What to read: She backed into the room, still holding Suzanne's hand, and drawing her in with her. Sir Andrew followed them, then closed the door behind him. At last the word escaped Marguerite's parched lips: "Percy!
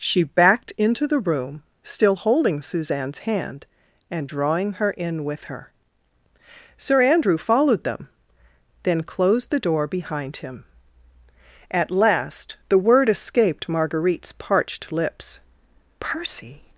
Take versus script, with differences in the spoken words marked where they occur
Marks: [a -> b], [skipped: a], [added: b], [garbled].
She backed into the room, still holding Suzanne's hand, and drawing her in with her. Sir Andrew followed them, then closed the door behind him. At last the word escaped Marguerite's parched lips: "Percy!